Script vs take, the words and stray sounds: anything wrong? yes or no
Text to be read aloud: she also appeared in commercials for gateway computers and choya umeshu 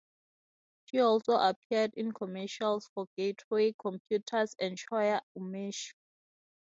no